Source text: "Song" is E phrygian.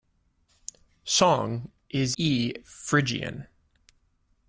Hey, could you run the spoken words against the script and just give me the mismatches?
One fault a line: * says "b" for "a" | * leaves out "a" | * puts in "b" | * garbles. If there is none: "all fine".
all fine